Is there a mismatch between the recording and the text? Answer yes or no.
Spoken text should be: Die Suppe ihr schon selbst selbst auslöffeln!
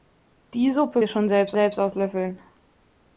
no